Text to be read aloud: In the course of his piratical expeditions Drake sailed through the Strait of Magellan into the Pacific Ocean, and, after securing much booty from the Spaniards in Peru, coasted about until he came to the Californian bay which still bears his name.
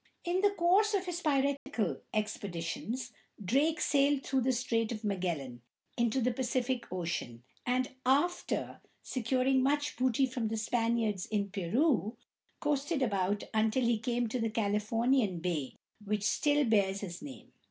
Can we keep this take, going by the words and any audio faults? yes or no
no